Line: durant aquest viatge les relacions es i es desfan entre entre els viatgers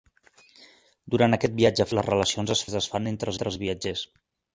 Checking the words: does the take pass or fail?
pass